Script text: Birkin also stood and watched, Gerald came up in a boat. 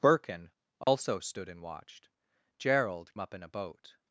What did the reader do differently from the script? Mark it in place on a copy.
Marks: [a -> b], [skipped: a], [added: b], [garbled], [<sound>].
Birkin also [dropout] stood and watched, Gerald [skipped: came] up in a boat.